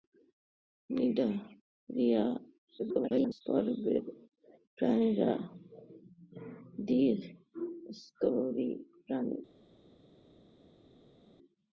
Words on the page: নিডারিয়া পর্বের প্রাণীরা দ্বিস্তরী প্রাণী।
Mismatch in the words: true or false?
true